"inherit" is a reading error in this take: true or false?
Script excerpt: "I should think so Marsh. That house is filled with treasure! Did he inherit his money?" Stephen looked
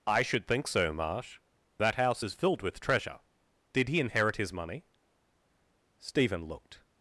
false